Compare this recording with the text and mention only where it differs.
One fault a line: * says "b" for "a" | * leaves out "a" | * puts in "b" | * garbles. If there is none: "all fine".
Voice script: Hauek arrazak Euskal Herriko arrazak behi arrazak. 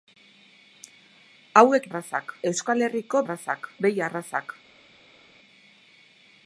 all fine